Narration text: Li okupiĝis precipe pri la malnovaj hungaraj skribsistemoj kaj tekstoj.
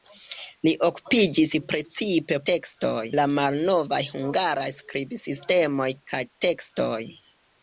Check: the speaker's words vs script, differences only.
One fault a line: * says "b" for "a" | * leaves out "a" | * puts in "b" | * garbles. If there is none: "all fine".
* says "tekstoj" for "pri"